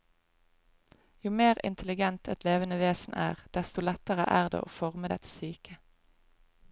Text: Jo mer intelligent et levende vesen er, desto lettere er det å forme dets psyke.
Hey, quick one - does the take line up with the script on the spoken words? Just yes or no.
yes